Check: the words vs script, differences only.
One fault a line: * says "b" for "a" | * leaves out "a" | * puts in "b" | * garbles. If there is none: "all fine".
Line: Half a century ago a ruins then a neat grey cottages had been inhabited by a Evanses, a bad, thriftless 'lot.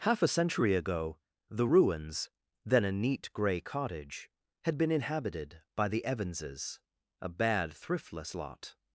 * says "the" for "a"
* says "cottage" for "cottages"
* says "the" for "a"